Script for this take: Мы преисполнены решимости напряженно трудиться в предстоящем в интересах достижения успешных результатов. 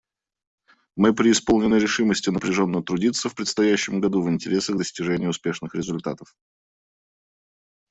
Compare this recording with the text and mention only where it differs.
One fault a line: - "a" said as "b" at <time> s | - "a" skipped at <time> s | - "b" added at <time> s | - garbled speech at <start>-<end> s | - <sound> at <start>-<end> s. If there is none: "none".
- "году" added at 4.0 s